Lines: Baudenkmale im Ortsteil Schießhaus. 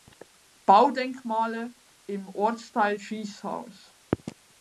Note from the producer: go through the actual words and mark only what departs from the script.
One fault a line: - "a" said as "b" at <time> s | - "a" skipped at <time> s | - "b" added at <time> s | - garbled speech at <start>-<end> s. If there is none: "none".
none